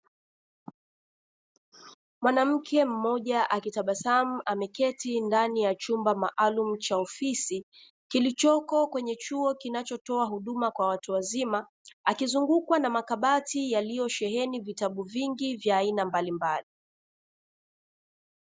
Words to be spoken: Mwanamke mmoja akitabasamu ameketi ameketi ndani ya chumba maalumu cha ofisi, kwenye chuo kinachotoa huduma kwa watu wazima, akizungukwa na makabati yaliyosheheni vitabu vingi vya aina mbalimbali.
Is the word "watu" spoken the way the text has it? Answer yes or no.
yes